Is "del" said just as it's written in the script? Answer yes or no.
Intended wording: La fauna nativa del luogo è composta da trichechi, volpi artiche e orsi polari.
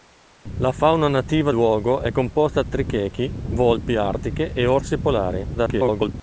no